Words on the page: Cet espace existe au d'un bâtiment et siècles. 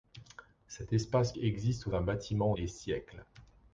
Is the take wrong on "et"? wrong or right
right